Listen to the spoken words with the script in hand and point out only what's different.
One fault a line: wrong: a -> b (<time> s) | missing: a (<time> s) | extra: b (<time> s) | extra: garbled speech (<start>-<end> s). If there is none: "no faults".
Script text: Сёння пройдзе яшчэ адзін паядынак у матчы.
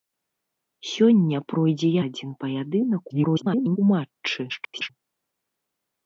missing: яшчэ (1.9 s)
extra: garbled speech (3.1-3.8 s)
extra: garbled speech (4.5-4.9 s)